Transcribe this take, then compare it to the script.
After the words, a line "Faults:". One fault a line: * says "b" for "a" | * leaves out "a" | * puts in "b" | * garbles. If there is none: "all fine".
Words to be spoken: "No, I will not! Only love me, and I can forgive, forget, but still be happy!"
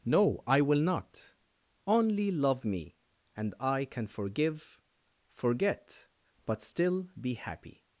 "No, I will not! Only love me, and I can forgive, forget, but still be happy!"
Faults:
all fine